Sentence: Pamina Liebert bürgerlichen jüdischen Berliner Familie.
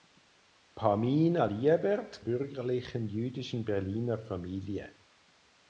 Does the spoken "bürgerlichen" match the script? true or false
true